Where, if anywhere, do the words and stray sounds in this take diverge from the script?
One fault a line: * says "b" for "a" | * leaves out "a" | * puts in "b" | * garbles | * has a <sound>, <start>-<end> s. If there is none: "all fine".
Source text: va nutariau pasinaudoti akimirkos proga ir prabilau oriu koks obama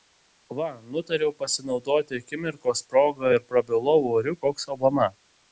all fine